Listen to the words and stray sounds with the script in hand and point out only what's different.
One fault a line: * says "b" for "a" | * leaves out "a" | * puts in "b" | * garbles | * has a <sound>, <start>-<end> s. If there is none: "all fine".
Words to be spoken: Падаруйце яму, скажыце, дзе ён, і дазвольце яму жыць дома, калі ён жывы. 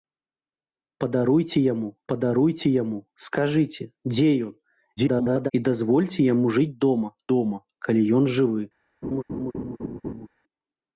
* puts in "падаруйце яму"
* garbles
* puts in "дома"
* has a laugh, 9.0-10.3 s